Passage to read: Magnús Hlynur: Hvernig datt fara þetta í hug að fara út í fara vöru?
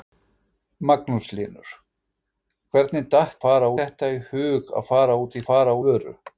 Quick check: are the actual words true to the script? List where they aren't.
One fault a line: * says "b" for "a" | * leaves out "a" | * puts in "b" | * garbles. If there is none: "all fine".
all fine